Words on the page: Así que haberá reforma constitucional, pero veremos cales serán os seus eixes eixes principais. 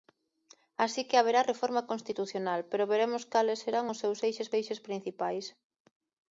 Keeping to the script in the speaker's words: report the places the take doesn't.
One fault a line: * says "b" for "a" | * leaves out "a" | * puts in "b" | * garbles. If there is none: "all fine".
all fine